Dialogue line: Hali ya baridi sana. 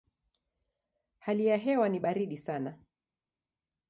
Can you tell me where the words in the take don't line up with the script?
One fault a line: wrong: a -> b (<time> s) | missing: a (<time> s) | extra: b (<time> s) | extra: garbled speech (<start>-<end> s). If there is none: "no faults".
extra: hewa ni (1.6 s)